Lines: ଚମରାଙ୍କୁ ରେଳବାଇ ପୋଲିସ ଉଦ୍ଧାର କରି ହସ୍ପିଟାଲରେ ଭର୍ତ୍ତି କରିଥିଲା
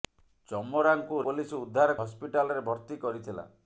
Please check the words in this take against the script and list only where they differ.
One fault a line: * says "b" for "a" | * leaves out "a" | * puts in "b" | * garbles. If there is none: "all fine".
* leaves out "ରେଳବାଇ"
* leaves out "କରି"